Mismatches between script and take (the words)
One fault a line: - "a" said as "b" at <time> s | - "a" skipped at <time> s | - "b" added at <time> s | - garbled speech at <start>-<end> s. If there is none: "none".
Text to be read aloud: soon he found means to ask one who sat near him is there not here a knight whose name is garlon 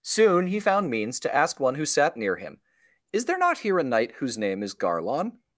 none